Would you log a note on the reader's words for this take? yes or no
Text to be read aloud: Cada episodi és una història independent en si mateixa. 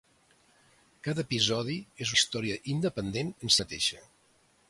yes